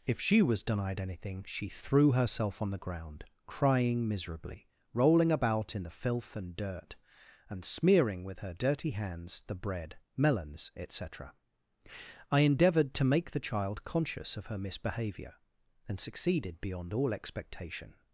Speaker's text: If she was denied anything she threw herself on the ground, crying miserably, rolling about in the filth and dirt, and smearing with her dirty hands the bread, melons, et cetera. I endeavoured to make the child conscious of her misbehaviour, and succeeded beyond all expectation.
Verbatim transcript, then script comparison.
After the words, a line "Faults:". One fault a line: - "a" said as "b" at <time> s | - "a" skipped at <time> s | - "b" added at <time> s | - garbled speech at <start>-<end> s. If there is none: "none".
If she was denied anything she threw herself on the ground, crying miserably, rolling about in the filth and dirt, and smearing with her dirty hands the bread, melons, et cetera. I endeavoured to make the child conscious of her misbehaviour, and succeeded beyond all expectation.
Faults:
none